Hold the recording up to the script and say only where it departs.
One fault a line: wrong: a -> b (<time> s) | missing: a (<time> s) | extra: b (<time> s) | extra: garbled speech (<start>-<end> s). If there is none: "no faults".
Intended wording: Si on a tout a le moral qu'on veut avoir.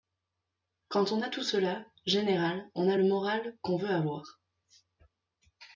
wrong: Si -> Quand (0.9 s)
extra: cela général on (1.4 s)